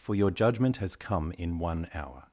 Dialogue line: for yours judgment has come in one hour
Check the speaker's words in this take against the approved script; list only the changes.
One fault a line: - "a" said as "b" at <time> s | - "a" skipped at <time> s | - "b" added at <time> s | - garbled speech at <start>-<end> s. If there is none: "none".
- "yours" said as "your" at 0.1 s